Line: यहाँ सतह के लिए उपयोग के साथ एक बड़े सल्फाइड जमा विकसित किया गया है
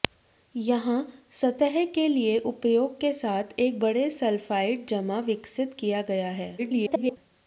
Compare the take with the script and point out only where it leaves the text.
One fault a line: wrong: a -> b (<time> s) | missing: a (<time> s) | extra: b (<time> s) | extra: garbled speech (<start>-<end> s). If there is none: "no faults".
extra: garbled speech (6.6-7.2 s)